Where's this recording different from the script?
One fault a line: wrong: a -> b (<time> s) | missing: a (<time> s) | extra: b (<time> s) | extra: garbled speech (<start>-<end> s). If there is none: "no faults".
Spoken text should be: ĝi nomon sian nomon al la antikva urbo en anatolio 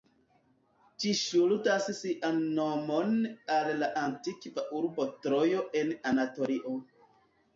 wrong: nomon -> ŝuldas (1.2 s)
extra: trojo (5.3 s)